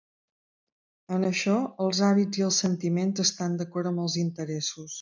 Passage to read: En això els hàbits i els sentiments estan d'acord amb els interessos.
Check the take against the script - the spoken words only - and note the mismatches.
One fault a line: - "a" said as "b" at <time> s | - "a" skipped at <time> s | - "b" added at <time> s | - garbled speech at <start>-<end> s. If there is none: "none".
none